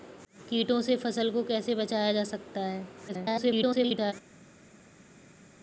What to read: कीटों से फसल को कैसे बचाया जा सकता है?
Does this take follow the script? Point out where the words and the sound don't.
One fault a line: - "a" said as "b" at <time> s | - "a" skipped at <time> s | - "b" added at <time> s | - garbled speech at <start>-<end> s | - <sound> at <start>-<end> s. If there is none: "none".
- garbled speech at 3.1-4.1 s